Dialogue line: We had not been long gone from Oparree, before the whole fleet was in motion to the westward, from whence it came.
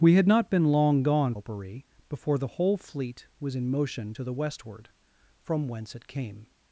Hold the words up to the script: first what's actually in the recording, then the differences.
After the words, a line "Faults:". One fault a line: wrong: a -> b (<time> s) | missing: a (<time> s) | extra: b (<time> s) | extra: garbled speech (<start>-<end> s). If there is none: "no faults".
We had not been long gone Oparree, before the whole fleet was in motion to the westward, from whence it came.
Faults:
missing: from (1.4 s)